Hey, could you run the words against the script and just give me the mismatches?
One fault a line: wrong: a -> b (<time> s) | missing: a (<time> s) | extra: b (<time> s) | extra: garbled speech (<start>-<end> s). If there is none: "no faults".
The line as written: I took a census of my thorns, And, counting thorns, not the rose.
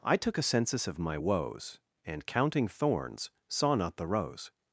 wrong: thorns -> woes (1.2 s)
extra: saw (3.5 s)